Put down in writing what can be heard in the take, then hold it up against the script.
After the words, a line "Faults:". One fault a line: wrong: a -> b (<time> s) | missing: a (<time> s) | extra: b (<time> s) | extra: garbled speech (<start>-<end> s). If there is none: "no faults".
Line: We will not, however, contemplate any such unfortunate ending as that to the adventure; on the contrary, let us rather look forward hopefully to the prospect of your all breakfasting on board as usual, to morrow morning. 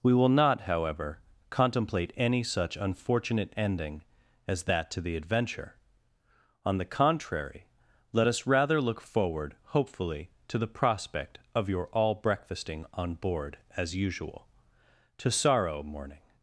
We will not, however, contemplate any such unfortunate ending as that to the adventure; on the contrary, let us rather look forward hopefully to the prospect of your all breakfasting on board as usual, to sorrow morning.
Faults:
wrong: morrow -> sorrow (15.3 s)